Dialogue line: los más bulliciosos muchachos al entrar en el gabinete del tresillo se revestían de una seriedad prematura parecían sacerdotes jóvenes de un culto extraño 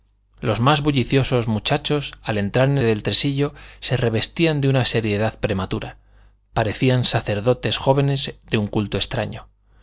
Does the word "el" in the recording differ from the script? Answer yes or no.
yes